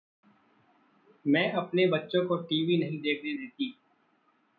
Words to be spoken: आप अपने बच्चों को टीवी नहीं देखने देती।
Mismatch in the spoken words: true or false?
true